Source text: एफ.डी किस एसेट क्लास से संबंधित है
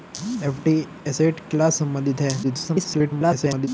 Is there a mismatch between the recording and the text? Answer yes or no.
yes